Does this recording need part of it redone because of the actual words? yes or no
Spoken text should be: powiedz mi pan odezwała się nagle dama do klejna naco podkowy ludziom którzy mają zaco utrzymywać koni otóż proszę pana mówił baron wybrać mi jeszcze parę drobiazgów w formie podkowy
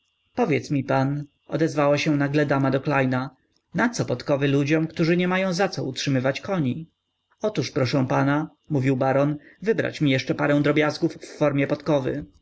yes